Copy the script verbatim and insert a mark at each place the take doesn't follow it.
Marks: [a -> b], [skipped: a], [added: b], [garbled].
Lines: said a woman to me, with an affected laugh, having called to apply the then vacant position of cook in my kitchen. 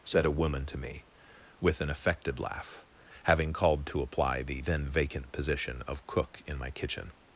said a woman to me, with an affected laugh, having called to apply the then vacant position of cook in my kitchen.